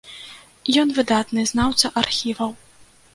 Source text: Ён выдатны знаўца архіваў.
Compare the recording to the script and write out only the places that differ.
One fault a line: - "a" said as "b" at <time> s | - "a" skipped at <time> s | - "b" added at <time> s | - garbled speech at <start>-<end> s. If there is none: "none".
none